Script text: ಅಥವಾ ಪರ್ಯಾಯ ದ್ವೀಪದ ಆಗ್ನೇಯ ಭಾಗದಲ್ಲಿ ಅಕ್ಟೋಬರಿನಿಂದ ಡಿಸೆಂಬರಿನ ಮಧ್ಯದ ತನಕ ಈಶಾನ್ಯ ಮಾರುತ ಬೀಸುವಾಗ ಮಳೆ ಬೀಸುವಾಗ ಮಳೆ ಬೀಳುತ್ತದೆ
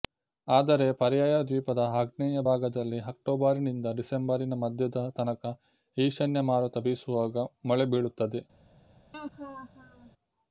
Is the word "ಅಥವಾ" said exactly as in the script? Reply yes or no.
no